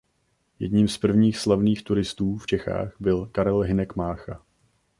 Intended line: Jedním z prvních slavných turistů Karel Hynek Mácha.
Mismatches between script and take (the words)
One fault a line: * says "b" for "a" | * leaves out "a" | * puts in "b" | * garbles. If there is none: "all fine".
* puts in "v Čechách byl"